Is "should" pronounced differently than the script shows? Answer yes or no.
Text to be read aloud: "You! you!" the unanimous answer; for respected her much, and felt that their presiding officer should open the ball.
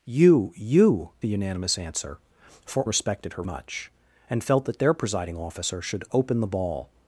no